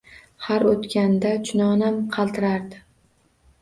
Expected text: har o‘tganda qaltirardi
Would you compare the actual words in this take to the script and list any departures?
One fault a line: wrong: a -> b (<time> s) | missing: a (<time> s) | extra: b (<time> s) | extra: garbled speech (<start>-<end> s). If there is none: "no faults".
extra: chunonam (1.5 s)